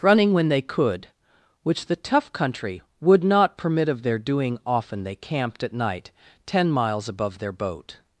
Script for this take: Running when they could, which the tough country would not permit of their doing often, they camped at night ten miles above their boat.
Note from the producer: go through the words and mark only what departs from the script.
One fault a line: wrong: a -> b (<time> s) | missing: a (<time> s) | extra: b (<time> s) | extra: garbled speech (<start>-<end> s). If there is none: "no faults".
no faults